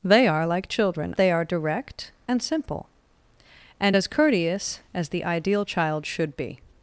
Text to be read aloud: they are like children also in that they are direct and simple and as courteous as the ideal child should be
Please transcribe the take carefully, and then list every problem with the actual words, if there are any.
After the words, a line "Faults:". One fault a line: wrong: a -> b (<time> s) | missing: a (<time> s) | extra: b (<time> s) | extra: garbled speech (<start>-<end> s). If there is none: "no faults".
they are like children they are direct and simple and as courteous as the ideal child should be
Faults:
missing: also in that (1.1 s)